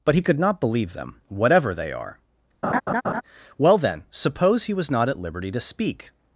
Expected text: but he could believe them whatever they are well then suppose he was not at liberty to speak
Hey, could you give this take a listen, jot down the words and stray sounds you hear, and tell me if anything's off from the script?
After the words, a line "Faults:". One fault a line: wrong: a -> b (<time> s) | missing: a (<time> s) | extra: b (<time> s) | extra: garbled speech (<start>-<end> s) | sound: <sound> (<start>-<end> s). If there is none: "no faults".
but he could not believe them whatever they are well then suppose he was not at liberty to speak
Faults:
extra: not (0.4 s)
sound: laugh (2.6-3.2 s)